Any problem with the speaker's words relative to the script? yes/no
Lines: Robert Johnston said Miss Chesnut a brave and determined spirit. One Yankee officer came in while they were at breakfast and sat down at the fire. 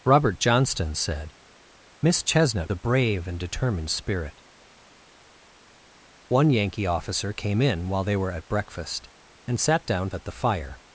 no